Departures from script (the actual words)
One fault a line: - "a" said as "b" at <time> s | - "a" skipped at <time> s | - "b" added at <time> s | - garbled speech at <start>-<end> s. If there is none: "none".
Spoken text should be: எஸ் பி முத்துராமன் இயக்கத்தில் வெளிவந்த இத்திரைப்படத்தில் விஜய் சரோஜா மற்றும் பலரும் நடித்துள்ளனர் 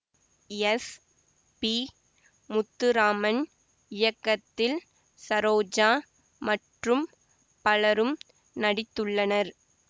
- "வெளிவந்த இத்திரைப்படத்தில் விஜய்" skipped at 4.8 s